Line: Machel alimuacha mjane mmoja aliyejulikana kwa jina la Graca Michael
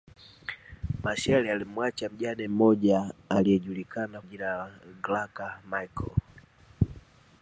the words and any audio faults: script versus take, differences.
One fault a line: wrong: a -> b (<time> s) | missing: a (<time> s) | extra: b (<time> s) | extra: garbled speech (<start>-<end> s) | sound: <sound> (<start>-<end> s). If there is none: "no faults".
missing: kwa (4.2 s)